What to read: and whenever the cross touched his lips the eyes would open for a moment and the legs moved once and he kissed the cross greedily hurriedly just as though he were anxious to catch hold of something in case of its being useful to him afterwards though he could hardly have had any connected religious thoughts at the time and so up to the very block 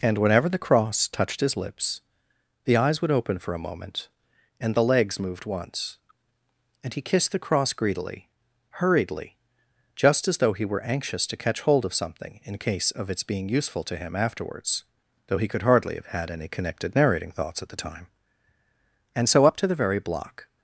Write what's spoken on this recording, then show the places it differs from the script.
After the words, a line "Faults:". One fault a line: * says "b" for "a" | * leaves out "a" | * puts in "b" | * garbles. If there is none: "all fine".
and whenever the cross touched his lips the eyes would open for a moment and the legs moved once and he kissed the cross greedily hurriedly just as though he were anxious to catch hold of something in case of its being useful to him afterwards though he could hardly have had any connected narrating thoughts at the time and so up to the very block
Faults:
* says "narrating" for "religious"